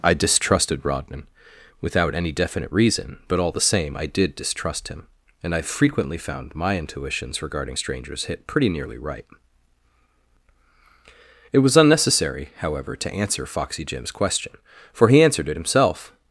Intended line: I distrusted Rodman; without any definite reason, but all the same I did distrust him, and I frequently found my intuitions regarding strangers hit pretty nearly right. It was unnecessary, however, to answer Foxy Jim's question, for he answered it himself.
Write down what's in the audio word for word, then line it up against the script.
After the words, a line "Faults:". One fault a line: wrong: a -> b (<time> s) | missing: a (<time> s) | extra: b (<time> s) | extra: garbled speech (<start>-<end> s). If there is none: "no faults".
I distrusted Rodman; without any definite reason, but all the same I did distrust him, and I frequently found my intuitions regarding strangers hit pretty nearly right. It was unnecessary, however, to answer Foxy Jim's question, for he answered it himself.
Faults:
no faults